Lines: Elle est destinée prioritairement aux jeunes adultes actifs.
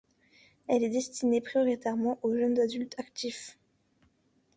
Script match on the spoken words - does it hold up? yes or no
yes